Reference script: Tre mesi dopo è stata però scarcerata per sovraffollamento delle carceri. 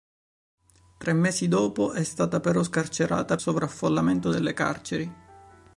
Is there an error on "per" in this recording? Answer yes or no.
yes